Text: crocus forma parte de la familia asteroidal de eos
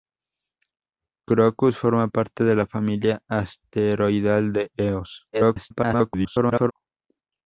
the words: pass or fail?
fail